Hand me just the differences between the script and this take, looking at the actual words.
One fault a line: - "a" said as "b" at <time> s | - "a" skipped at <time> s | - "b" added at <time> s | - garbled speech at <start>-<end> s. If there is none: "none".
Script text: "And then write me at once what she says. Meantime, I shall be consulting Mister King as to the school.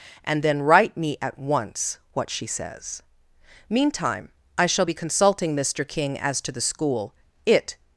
- "It" added at 7.5 s